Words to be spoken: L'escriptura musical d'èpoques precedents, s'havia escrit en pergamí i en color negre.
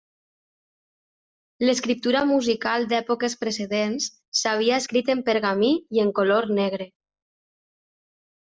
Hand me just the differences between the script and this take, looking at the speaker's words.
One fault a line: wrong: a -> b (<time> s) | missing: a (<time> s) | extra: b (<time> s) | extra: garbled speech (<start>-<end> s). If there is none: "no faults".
no faults